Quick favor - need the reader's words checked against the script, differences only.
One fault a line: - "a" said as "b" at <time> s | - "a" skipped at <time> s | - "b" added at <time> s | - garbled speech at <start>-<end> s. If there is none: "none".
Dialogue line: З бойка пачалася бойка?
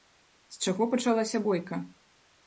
- "бойка" said as "чаго" at 0.7 s